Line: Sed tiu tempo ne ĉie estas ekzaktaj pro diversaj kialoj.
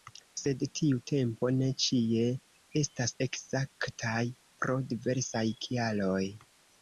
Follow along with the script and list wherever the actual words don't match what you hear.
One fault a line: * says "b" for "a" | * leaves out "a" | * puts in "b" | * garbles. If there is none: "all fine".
all fine